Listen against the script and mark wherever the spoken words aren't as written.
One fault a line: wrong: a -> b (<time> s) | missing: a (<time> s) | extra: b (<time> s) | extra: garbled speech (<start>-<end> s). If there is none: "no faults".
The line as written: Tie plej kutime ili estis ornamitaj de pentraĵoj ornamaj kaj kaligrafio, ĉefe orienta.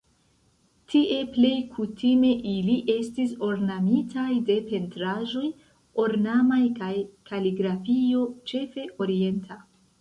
no faults